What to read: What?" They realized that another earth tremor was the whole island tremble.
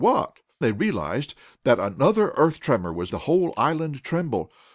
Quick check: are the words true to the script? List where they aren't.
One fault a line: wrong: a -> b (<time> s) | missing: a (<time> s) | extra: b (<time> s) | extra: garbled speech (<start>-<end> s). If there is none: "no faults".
no faults